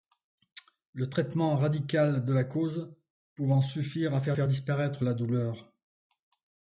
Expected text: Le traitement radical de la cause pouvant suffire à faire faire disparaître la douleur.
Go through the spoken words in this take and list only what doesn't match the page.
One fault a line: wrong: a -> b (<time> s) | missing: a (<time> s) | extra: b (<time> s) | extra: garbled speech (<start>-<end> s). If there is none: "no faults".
no faults